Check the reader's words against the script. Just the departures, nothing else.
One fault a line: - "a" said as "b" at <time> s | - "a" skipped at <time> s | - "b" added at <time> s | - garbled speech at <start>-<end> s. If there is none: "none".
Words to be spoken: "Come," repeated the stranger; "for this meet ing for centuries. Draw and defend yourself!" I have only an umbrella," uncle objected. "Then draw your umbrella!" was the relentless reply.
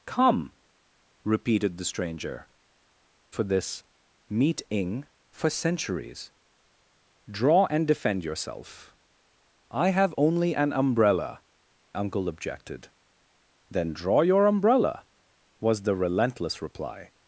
none